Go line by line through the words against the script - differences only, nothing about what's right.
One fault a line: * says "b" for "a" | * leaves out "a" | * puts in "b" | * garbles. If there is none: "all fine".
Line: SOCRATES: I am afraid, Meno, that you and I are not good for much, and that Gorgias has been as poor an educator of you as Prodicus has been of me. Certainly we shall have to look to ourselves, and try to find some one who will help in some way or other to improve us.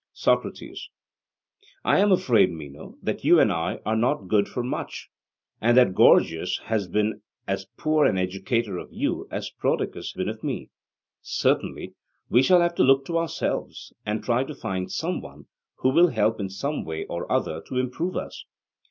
* leaves out "has"